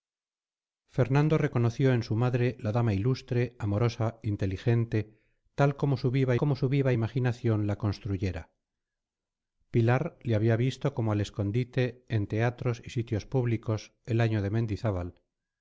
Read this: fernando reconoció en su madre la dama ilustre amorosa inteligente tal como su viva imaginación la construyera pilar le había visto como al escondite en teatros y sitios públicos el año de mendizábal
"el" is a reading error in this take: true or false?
false